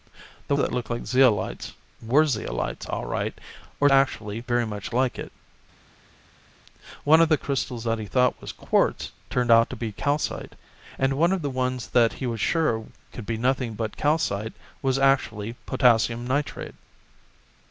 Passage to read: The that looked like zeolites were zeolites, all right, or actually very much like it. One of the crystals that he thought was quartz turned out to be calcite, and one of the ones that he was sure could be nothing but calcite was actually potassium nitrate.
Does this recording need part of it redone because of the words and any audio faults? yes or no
no